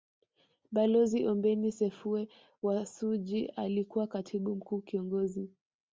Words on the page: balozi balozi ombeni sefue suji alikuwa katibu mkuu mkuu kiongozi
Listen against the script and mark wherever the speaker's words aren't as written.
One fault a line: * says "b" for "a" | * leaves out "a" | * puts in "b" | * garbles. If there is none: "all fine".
* leaves out "balozi"
* puts in "wa"
* leaves out "mkuu"